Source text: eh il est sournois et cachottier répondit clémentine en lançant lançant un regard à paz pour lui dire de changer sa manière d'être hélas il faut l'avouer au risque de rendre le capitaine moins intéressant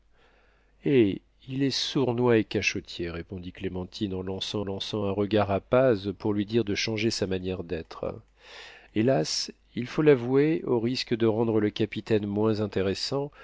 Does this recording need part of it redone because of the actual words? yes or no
no